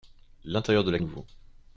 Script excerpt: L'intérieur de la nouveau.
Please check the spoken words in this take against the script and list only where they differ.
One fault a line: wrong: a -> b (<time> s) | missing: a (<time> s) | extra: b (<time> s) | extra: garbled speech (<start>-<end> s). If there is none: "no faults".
no faults